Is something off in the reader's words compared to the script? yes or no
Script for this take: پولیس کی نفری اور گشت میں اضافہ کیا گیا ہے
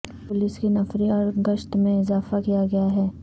no